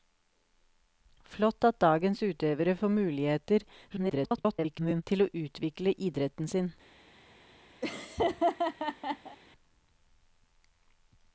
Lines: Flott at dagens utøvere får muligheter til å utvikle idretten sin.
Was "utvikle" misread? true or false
false